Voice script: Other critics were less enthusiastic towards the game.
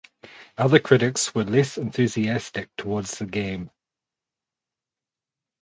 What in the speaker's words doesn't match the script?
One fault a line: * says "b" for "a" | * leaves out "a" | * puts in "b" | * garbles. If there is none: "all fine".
all fine